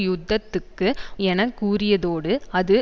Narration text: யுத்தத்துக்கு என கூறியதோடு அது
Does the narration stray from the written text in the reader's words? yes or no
no